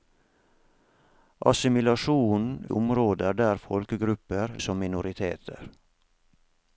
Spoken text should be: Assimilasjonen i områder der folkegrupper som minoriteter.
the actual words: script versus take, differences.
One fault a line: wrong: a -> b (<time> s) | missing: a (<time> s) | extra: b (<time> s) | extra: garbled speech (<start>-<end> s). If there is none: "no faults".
no faults